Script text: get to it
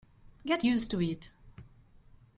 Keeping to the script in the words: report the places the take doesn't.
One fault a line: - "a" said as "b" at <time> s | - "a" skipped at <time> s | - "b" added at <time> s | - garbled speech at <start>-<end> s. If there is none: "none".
- "used" added at 0.6 s